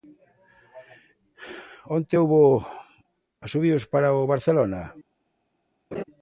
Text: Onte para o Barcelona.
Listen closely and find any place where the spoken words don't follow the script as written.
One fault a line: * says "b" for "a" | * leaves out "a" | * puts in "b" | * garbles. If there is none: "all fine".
* puts in "houbo asubíos"